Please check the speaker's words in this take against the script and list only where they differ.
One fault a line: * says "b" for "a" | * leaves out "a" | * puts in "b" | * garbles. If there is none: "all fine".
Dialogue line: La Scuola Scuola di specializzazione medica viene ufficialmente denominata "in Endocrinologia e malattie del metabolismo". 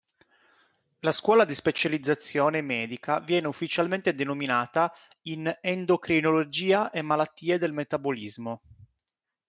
* leaves out "Scuola"